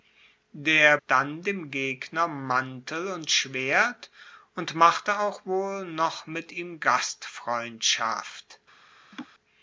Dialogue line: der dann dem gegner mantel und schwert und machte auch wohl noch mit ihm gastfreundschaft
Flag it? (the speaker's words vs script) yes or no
no